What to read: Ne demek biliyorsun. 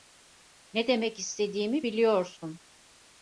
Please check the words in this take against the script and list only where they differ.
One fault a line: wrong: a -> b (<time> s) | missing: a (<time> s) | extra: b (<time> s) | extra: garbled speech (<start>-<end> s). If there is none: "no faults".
extra: istediğimi (1.2 s)